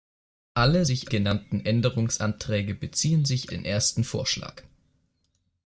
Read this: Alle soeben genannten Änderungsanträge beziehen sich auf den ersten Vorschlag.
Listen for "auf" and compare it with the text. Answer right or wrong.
wrong